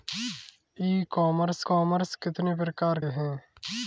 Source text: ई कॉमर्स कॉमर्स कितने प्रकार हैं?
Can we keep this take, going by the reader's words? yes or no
yes